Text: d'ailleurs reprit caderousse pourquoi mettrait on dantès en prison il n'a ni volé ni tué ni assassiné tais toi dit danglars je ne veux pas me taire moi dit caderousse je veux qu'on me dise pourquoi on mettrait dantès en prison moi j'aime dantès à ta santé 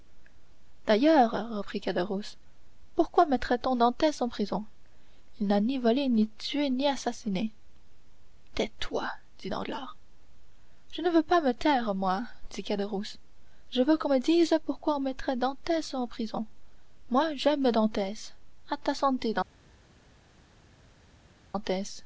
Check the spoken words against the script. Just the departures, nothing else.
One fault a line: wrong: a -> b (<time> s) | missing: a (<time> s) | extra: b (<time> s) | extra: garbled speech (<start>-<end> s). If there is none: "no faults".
no faults